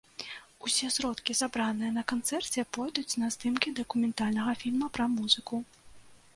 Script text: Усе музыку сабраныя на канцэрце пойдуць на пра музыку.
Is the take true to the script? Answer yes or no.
no